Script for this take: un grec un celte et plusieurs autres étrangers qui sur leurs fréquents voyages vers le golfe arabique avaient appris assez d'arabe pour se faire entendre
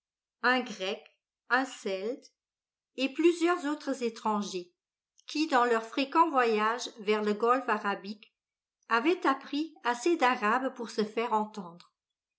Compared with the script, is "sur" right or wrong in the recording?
wrong